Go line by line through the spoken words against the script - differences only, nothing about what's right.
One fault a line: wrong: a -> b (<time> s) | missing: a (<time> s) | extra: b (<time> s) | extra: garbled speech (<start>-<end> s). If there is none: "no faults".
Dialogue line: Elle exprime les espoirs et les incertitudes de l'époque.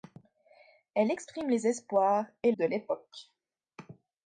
missing: les incertitudes (2.5 s)